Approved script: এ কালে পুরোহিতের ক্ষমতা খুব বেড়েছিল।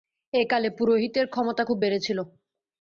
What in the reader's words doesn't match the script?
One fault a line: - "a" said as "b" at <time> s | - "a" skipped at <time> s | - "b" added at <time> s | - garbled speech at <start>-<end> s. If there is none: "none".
none